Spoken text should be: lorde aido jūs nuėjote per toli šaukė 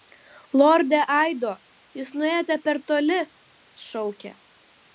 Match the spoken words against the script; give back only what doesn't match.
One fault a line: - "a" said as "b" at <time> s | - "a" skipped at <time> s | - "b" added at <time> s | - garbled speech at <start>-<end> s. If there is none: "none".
none